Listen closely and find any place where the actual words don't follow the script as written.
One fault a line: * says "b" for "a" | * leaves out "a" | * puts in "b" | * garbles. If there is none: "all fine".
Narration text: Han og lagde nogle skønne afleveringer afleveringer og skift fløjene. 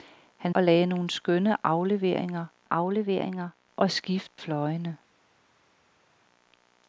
all fine